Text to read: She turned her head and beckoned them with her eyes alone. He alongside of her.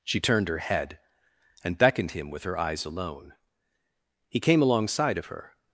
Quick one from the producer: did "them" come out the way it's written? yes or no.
no